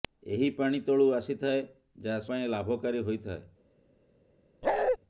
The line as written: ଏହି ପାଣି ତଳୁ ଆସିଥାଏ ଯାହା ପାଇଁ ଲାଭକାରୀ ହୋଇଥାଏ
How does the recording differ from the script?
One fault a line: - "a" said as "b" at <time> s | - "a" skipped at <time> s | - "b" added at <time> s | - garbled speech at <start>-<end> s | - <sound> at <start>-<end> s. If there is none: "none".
- bark at 4.6-5.0 s